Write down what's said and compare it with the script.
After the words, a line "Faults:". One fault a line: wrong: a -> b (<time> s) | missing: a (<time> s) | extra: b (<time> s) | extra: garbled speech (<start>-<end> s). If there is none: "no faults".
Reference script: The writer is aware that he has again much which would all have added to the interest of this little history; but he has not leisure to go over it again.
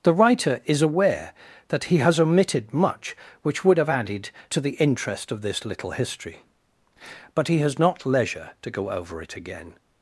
The writer is aware that he has omitted much which would have added to the interest of this little history; but he has not leisure to go over it again.
Faults:
wrong: again -> omitted (2.2 s)
missing: all (3.8 s)